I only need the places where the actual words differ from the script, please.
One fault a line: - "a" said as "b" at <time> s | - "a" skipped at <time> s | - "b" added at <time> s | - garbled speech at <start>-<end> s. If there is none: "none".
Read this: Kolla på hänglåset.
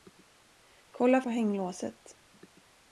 none